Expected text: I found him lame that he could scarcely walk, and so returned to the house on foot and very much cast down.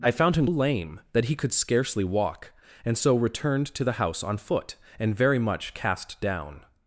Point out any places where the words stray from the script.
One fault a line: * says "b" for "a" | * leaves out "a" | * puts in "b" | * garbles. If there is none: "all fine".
all fine